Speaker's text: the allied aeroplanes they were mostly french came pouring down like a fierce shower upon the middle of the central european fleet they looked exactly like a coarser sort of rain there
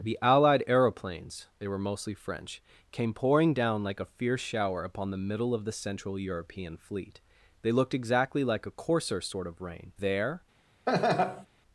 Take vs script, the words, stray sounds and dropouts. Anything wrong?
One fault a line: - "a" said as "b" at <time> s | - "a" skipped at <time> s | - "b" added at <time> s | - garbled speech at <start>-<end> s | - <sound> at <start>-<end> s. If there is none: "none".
- laugh at 10.9-11.5 s